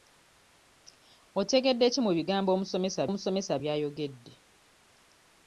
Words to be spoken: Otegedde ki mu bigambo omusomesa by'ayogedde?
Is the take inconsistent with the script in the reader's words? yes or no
yes